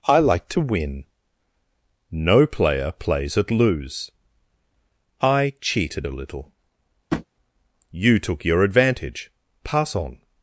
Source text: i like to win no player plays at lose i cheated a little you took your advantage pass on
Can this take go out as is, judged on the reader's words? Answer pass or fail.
pass